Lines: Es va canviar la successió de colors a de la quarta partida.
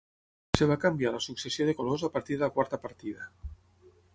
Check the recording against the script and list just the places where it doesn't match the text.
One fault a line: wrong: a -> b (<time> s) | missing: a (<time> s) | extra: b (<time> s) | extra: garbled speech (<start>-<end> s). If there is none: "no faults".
extra: partir (2.2 s)